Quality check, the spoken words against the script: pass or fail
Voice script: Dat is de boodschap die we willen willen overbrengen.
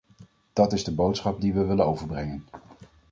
fail